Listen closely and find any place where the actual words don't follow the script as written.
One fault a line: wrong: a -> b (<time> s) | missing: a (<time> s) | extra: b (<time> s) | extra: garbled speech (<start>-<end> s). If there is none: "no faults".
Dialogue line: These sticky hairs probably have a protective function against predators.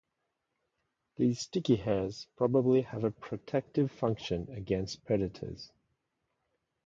no faults